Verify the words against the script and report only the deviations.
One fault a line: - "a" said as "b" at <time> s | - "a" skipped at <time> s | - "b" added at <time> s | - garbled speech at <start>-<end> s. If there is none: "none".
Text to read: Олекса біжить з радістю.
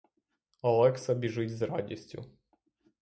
none